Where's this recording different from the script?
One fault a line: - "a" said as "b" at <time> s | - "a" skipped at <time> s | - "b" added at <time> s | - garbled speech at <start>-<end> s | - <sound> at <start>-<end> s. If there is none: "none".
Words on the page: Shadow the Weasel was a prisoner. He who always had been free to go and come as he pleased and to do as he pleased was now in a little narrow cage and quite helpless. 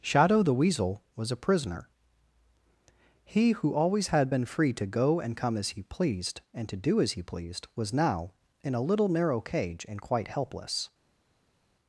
none